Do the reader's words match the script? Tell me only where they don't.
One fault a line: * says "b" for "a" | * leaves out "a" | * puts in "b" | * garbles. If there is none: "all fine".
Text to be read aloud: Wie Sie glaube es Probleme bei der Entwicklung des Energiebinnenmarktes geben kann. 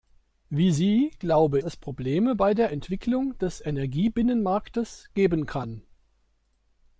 all fine